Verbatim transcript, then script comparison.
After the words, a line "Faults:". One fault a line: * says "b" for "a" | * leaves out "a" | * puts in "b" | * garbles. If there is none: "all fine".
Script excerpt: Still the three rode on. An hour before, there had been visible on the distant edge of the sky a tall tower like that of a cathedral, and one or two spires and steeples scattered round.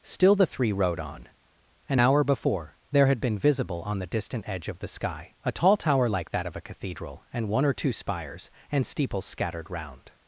Still the three rode on. An hour before, there had been visible on the distant edge of the sky a tall tower like that of a cathedral, and one or two spires and steeples scattered round.
Faults:
all fine